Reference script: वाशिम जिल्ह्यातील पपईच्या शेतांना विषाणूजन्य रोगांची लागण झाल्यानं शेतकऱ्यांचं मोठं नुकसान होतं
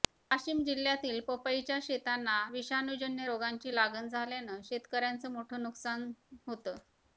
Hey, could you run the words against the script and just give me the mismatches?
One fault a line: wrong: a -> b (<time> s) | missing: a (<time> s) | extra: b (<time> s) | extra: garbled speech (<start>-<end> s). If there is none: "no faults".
no faults